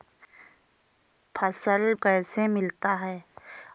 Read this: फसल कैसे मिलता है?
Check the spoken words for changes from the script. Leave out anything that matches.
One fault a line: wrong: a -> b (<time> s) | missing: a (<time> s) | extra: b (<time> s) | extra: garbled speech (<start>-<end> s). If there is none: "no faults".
no faults